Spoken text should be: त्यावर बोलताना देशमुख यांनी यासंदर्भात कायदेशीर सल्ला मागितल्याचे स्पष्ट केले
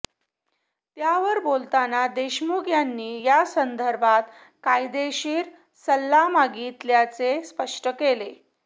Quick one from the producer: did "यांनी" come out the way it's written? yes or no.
yes